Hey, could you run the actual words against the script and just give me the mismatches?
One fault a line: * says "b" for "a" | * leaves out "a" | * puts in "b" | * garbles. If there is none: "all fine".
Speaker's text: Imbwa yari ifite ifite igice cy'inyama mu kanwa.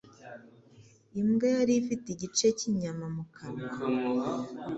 * leaves out "ifite"